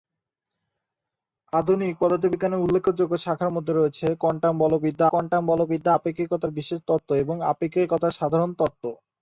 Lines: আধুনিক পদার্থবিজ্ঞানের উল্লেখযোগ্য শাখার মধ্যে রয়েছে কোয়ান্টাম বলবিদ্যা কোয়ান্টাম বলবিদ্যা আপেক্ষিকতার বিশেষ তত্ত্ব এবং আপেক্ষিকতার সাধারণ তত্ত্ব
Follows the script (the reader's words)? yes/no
yes